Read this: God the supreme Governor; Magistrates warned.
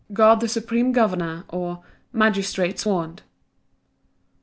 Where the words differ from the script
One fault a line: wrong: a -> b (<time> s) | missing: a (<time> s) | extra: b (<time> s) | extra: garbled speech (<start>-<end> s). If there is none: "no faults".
extra: or (1.5 s)